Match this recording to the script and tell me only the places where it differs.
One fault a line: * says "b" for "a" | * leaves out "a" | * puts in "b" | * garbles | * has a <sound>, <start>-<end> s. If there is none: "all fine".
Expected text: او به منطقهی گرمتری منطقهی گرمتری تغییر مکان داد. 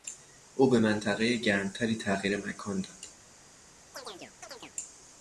* leaves out "منطقهی گرمتری"
* has a chirp, 3.9-4.8 s